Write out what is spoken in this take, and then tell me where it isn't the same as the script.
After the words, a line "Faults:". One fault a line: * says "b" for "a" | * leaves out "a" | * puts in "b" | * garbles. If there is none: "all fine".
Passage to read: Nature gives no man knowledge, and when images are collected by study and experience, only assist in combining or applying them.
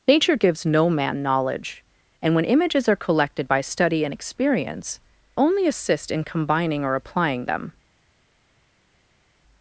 Nature gives no man knowledge, and when images are collected by study and experience, only assist in combining or applying them.
Faults:
all fine